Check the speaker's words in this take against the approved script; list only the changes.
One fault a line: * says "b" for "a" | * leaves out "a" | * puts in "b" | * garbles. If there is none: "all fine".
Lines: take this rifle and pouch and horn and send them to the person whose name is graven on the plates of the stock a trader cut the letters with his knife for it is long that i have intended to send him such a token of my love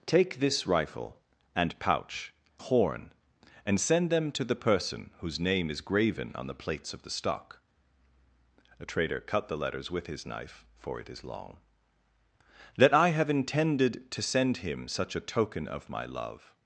* leaves out "and"